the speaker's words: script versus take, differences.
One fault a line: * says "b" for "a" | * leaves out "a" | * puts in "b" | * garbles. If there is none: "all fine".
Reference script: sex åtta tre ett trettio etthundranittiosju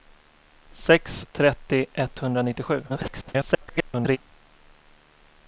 * leaves out "åtta tre ett"
* garbles